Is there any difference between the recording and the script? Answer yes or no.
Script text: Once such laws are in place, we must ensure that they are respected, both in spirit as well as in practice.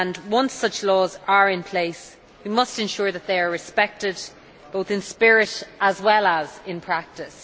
no